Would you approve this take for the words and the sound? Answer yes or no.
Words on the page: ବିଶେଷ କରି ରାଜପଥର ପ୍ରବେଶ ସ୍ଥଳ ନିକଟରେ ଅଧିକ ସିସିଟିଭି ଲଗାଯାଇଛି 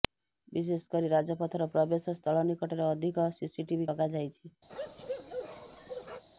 no